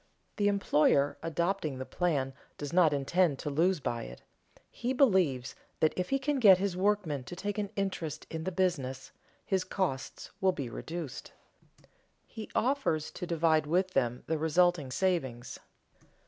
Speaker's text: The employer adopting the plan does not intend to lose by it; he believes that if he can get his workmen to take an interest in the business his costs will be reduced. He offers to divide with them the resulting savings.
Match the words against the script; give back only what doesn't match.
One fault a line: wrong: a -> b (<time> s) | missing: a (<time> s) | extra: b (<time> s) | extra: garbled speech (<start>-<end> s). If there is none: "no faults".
no faults